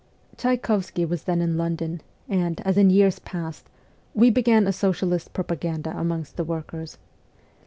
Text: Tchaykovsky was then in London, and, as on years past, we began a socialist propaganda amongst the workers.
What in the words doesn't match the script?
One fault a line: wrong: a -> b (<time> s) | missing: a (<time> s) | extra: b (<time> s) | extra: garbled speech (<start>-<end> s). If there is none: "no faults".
wrong: on -> in (2.8 s)